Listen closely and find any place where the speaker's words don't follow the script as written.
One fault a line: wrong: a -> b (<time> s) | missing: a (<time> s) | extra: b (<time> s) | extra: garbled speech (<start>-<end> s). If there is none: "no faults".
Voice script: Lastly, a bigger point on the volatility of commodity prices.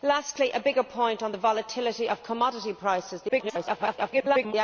extra: garbled speech (3.3-4.5 s)